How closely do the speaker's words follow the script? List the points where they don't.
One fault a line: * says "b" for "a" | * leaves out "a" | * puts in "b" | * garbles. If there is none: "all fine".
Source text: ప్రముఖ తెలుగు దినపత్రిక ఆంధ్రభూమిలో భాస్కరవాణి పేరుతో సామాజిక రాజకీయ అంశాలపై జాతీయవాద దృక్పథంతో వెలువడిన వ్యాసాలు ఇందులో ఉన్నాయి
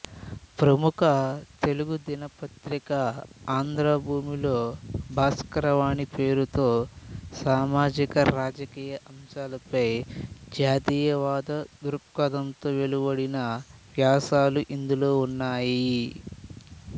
all fine